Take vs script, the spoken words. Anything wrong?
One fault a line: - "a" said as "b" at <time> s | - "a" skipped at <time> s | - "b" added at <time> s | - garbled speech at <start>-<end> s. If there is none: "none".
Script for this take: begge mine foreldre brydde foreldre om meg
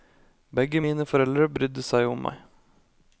- "foreldre" said as "seg" at 1.8 s